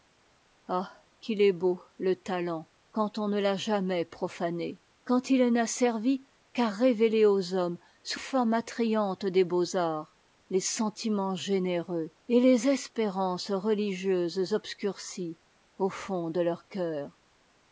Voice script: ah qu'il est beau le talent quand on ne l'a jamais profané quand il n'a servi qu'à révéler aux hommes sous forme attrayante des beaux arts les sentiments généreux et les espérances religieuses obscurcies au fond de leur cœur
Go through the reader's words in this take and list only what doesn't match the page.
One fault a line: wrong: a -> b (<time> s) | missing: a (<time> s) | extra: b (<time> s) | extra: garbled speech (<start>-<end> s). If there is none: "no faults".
no faults